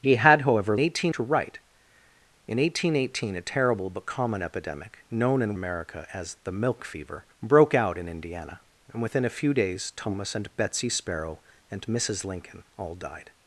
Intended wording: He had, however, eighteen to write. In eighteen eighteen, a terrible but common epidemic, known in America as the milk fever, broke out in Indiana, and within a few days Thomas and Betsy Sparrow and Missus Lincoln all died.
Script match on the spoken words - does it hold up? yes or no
yes